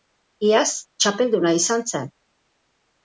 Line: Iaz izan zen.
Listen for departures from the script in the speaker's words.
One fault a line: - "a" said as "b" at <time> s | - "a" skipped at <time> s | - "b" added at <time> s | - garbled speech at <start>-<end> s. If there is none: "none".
- "txapelduna" added at 1.0 s